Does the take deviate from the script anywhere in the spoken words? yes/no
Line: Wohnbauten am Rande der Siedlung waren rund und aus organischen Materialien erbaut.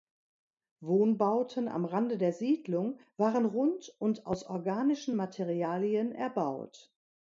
no